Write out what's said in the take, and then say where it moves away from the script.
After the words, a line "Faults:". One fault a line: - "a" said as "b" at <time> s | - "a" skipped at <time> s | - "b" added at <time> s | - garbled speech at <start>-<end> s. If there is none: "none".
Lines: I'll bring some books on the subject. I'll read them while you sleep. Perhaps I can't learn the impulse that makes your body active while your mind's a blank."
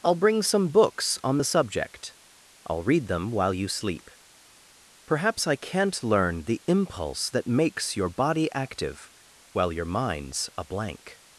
I'll bring some books on the subject. I'll read them while you sleep. Perhaps I can't learn the impulse that makes your body active while your mind's a blank."
Faults:
none